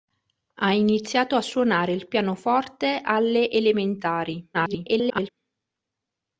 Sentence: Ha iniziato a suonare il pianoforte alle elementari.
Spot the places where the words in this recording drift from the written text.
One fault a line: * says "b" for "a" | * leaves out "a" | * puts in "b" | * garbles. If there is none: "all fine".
* garbles